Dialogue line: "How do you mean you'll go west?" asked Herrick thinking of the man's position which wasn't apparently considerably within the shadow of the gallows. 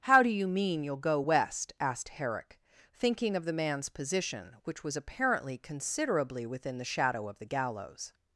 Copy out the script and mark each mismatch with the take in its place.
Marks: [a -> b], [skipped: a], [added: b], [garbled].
"How do you mean you'll go west?" asked Herrick thinking of the man's position which [wasn't -> was] apparently considerably within the shadow of the gallows.